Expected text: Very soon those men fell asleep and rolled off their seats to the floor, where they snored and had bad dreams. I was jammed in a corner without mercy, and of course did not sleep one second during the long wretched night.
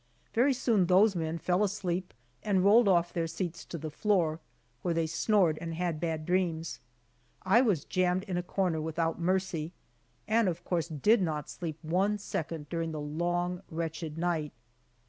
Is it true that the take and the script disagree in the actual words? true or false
false